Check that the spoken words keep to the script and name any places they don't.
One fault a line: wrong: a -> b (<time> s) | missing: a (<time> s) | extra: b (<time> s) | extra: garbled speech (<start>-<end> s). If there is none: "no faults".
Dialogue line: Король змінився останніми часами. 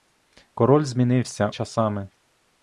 missing: останніми (1.5 s)